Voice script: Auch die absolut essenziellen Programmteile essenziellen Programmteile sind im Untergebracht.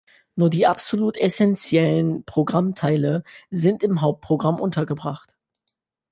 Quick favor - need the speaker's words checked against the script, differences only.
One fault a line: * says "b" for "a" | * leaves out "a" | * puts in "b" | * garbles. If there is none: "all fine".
* says "Nur" for "Auch"
* leaves out "essenziellen Programmteile"
* puts in "Hauptprogramm"